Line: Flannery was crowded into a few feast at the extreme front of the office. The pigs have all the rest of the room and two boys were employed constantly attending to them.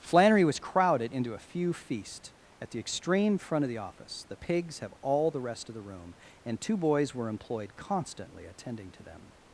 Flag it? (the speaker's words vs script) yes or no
no